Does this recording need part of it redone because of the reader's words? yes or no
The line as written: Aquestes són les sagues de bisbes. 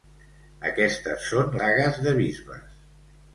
yes